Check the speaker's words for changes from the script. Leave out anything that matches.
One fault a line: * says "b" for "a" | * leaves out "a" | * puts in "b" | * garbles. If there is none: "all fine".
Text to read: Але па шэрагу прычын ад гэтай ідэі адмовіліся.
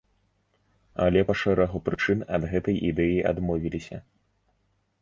all fine